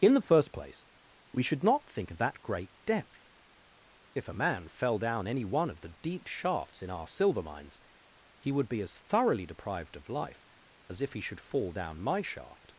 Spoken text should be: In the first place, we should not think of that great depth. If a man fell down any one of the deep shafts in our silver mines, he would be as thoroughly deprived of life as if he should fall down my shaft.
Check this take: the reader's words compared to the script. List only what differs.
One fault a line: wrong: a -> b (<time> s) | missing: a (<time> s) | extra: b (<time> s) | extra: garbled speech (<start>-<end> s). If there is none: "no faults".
no faults